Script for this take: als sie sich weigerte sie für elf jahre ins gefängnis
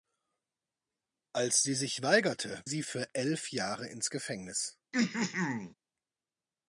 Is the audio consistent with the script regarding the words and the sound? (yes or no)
no